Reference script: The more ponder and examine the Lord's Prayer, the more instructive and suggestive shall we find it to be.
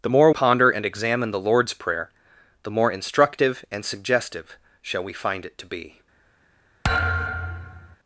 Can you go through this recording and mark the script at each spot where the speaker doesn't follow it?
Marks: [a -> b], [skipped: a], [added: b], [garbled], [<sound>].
The more ponder and examine the Lord's Prayer, the more instructive and suggestive shall we find it to be. [thud]